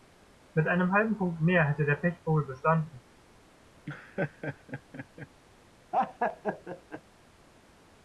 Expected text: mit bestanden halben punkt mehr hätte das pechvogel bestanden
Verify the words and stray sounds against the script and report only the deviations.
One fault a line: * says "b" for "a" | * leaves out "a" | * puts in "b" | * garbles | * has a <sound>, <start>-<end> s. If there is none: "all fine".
* says "einem" for "bestanden"
* says "der" for "das"
* has a laugh, 3.9-5.3 s
* has a laugh, 5.9-7.0 s